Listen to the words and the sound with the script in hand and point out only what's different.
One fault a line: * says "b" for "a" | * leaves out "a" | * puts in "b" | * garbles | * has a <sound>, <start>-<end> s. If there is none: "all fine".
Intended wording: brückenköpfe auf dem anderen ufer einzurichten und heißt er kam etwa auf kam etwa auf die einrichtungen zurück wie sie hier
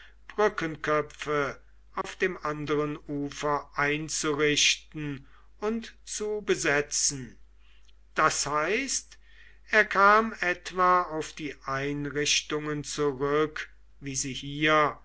* has a dropout, 2.0-2.0 s
* says "zu besetzen das heißt er" for "heißt er kam etwa auf"